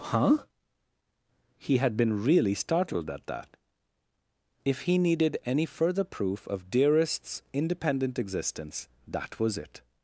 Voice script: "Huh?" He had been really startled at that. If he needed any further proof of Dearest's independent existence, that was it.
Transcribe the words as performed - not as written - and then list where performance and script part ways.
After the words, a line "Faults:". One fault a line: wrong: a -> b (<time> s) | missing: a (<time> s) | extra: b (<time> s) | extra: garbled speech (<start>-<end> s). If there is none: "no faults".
"Huh?" He had been really startled at that. If he needed any further proof of Dearest's independent existence, that was it.
Faults:
no faults